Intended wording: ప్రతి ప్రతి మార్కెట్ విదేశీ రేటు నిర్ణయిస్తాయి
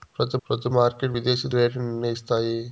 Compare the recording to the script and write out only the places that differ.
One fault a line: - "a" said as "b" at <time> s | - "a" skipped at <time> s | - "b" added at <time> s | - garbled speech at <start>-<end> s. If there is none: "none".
none